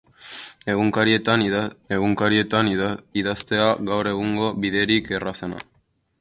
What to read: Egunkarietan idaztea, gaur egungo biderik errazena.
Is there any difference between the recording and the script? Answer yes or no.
yes